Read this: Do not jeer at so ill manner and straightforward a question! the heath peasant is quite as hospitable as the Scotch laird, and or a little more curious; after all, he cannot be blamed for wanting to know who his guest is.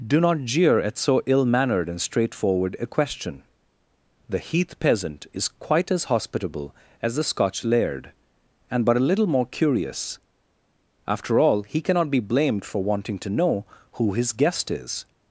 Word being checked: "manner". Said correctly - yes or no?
no